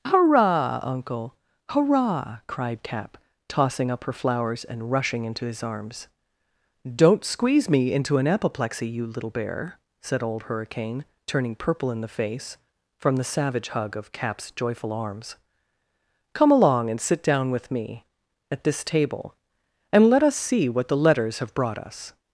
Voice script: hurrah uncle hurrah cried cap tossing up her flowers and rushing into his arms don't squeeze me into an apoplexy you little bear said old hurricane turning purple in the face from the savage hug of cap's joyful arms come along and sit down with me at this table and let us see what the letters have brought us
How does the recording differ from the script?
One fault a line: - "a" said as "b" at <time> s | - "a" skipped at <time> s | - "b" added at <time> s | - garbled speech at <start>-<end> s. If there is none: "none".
none